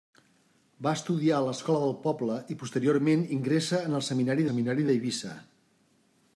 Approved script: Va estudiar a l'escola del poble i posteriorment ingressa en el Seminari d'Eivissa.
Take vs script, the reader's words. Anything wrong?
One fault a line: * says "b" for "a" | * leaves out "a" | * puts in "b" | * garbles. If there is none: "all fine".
* puts in "Seminari"